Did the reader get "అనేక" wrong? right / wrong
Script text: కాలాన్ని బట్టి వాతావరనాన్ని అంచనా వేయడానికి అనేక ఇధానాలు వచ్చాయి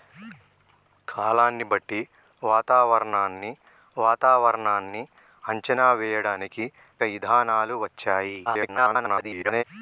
wrong